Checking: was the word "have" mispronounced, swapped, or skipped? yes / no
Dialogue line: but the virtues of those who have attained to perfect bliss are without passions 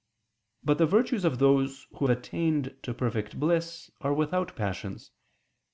yes